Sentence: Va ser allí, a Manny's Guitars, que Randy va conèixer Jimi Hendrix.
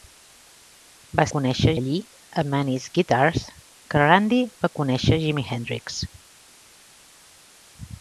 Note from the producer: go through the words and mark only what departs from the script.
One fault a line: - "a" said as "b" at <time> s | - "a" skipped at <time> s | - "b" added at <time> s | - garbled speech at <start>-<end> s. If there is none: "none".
- "ser" said as "conèixer" at 1.4 s